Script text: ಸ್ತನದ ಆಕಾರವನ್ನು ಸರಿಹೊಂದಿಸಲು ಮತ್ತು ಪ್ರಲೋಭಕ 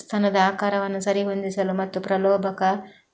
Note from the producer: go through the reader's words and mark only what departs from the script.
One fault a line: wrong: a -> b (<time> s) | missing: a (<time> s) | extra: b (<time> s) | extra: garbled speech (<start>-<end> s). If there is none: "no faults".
no faults